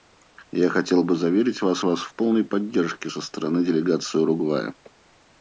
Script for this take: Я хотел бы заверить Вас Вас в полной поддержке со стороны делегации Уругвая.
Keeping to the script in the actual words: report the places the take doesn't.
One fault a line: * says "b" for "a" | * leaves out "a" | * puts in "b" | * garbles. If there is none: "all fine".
all fine